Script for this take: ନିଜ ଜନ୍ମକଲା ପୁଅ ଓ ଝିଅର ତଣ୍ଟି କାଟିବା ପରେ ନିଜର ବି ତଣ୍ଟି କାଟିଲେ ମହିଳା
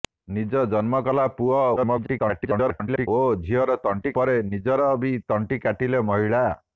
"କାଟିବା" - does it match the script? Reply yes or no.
no